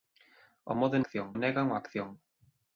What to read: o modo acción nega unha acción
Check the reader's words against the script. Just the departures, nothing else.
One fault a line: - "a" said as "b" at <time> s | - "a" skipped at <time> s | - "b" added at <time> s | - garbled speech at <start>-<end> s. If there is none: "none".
none